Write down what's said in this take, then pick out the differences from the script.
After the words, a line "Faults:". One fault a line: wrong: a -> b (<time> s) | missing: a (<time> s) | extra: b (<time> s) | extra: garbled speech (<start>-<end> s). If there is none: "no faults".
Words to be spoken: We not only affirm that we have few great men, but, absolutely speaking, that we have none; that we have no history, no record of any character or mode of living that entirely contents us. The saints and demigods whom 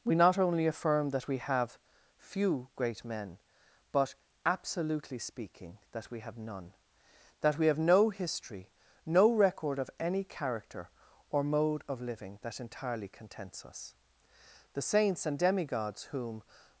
We not only affirm that we have few great men, but, absolutely speaking, that we have none; that we have no history, no record of any character or mode of living that entirely contents us. The saints and demigods whom
Faults:
no faults